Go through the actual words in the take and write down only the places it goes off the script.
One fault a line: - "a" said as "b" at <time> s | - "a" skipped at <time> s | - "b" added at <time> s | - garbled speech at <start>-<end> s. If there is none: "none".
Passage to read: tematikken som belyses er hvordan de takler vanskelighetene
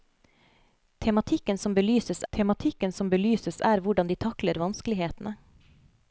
- "tematikken som belyses" added at 2.3 s